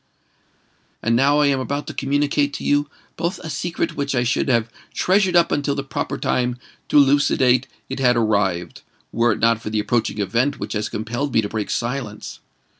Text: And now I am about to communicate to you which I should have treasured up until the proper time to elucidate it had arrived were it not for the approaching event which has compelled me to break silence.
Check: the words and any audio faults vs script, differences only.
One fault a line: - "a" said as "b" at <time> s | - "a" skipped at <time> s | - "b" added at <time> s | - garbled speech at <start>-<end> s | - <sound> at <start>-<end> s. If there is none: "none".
- "both a secret" added at 3.2 s